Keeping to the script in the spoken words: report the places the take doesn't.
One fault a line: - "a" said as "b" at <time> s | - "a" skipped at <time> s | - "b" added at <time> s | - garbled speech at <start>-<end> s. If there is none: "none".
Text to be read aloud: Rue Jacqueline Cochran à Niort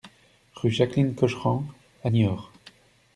none